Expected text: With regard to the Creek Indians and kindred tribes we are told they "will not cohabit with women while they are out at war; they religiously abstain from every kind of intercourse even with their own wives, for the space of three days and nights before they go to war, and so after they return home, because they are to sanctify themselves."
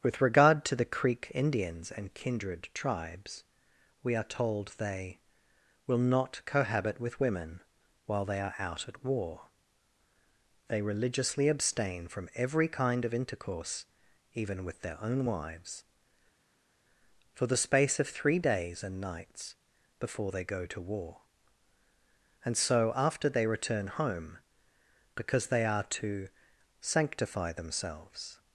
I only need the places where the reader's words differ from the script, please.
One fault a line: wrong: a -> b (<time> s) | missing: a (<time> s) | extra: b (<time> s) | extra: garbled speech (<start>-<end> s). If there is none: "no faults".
no faults